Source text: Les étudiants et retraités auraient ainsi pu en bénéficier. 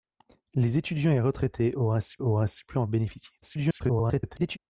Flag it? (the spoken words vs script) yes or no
yes